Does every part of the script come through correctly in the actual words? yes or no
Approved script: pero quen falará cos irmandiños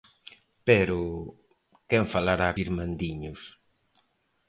no